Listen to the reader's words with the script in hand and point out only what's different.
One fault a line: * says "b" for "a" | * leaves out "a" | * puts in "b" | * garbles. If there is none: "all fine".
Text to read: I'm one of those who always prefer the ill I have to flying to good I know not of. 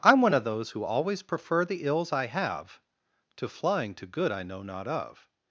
* says "ills" for "ill"